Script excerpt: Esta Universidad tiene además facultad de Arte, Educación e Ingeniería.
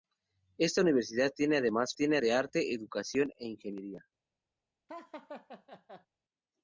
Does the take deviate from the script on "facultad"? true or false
true